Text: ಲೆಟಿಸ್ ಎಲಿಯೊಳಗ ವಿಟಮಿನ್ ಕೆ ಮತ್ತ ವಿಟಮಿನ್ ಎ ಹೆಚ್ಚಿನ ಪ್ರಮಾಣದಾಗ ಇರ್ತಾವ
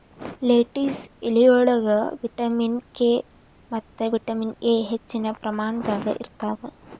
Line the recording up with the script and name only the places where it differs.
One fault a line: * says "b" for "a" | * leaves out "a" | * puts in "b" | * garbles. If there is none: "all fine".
all fine